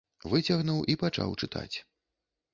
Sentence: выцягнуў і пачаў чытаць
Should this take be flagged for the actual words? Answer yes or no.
no